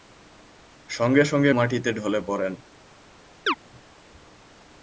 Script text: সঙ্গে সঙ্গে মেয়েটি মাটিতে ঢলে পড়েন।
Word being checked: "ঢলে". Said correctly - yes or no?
yes